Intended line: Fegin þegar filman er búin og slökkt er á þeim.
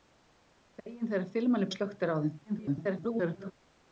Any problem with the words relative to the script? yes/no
yes